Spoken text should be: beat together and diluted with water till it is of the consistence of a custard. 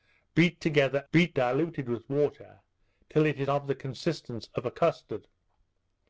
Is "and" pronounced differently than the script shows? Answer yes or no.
yes